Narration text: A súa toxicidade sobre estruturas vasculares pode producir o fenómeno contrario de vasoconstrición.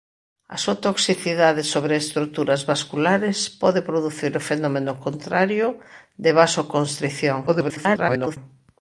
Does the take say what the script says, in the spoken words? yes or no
no